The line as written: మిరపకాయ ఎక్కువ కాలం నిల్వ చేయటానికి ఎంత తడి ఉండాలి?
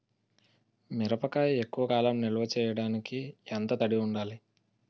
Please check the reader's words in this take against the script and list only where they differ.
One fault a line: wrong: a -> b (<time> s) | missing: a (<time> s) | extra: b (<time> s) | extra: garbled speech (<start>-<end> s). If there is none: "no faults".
no faults